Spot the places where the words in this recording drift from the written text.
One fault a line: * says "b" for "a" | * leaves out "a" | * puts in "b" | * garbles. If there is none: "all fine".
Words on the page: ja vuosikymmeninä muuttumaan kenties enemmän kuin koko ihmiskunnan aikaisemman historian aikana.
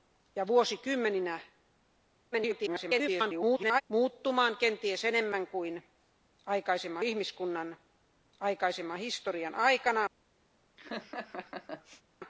* garbles
* says "aikaisemman" for "koko"